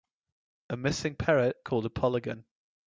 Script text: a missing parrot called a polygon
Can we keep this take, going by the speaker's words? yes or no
yes